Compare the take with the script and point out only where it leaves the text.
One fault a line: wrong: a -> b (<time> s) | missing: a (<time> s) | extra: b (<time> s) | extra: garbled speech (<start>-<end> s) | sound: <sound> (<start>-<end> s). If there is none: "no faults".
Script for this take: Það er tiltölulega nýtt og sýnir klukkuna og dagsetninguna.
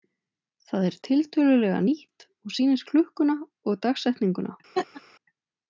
sound: laugh (4.8-5.0 s)